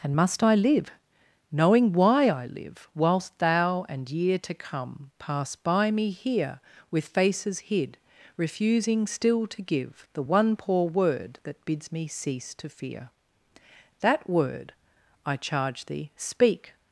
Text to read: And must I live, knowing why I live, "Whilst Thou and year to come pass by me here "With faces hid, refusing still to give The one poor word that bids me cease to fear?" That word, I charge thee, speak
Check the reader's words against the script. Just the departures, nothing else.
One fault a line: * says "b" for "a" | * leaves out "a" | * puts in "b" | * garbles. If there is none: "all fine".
all fine